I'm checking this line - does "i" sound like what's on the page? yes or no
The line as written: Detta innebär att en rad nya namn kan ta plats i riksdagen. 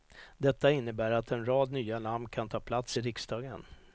yes